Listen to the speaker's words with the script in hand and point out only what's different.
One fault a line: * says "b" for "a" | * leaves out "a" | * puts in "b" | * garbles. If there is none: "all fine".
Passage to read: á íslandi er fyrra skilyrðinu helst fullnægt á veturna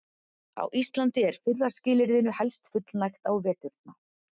all fine